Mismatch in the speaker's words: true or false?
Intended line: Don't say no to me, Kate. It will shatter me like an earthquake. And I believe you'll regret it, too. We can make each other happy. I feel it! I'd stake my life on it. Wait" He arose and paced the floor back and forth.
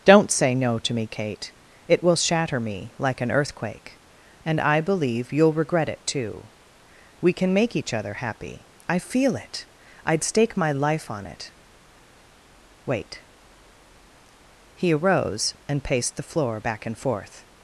false